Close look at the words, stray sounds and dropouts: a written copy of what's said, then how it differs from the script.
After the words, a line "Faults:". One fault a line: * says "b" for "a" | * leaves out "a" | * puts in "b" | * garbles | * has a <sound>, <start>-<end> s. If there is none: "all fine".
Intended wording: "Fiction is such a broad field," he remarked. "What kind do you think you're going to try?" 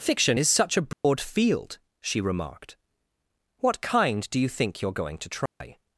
"Fiction is such a broad field," she remarked. "What kind do you think you're going to try?"
Faults:
* has a dropout, 0.9-1.0 s
* says "she" for "he"
* has a dropout, 5.5-5.6 s